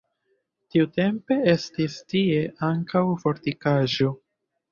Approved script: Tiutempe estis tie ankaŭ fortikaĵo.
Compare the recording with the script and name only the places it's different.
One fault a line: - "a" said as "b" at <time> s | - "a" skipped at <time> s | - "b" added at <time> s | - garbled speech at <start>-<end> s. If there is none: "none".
none